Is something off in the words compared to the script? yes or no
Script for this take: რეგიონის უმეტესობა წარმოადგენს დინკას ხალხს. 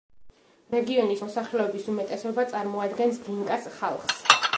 yes